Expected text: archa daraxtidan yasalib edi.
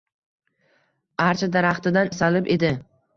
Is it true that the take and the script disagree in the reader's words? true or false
false